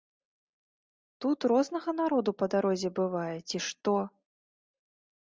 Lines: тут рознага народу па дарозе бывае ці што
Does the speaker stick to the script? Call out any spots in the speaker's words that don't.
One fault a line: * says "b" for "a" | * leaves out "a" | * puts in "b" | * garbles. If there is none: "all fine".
all fine